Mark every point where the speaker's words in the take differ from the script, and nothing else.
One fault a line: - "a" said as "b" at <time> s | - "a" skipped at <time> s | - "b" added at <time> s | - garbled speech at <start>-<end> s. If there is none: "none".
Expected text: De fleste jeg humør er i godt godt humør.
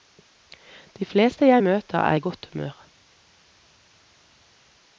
- "humør" said as "møter" at 1.6 s
- "godt" skipped at 2.5 s